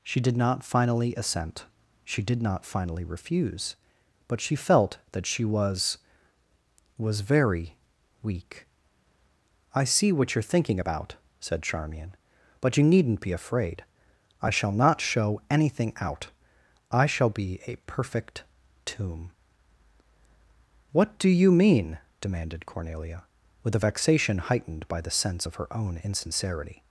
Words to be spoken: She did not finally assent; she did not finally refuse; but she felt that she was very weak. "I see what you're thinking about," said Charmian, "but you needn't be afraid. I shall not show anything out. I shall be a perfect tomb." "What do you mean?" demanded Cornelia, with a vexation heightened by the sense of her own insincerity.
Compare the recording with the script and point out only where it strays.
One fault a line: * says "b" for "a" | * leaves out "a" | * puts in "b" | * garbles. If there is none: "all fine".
* puts in "was"